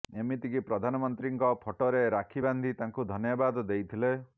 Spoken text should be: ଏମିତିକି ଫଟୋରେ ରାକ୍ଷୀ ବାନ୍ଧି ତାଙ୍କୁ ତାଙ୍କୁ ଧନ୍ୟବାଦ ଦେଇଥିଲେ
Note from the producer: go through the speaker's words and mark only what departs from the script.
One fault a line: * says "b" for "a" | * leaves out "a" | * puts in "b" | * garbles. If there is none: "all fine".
* puts in "ପ୍ରଧାନମନ୍ତ୍ରୀଙ୍କ"
* leaves out "ତାଙ୍କୁ"